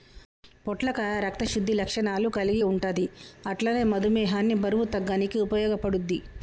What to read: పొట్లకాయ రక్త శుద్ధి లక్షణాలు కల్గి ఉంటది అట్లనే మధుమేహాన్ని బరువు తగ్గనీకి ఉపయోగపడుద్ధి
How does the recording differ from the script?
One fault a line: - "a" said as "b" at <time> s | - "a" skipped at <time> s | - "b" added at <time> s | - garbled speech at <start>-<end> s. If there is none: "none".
none